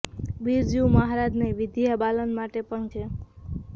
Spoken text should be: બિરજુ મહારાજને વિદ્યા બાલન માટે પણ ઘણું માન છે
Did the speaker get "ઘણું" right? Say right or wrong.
wrong